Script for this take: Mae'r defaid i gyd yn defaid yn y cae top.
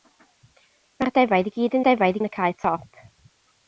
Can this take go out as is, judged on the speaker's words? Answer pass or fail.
pass